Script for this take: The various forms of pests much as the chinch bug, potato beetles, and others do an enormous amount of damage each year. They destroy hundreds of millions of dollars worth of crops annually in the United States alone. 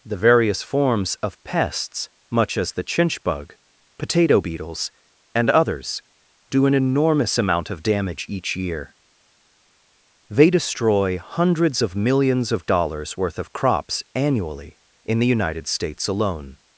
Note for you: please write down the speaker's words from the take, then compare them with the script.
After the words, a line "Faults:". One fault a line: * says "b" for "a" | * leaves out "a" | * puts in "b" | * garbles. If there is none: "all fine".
The various forms of pests much as the chinch bug, potato beetles, and others do an enormous amount of damage each year. They destroy hundreds of millions of dollars worth of crops annually in the United States alone.
Faults:
all fine